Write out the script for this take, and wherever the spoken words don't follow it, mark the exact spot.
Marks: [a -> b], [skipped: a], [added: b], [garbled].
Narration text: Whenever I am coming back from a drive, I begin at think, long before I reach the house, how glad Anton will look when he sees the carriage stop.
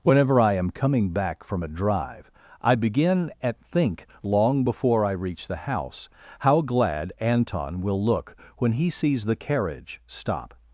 Whenever I am coming back from a drive, I begin at think, long before I reach the house, how glad Anton will look when he sees the carriage stop.